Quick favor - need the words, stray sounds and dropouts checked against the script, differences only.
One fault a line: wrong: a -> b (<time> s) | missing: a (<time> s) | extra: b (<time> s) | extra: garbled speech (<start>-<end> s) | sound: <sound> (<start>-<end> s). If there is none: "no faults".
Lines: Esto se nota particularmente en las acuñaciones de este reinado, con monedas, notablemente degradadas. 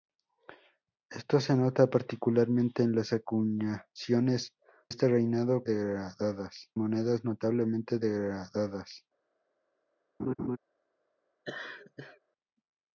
missing: de (4.5 s)
wrong: con -> degradadas (5.6 s)
sound: laugh (10.2-10.6 s)
sound: laugh (11.4-12.2 s)